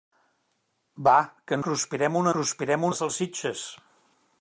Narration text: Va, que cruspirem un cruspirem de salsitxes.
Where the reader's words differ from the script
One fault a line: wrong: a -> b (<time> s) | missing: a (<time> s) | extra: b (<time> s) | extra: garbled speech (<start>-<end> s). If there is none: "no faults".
no faults